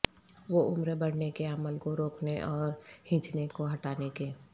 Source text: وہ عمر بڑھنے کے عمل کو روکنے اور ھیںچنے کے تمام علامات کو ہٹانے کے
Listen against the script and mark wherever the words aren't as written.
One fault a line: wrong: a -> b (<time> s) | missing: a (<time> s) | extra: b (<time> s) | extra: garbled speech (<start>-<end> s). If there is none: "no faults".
missing: کے تمام علامات (3.5 s)